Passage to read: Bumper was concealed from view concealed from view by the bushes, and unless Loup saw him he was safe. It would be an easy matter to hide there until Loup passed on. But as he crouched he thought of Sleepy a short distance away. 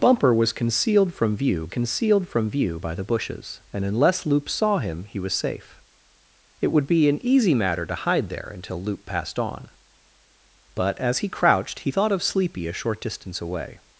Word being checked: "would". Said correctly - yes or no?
yes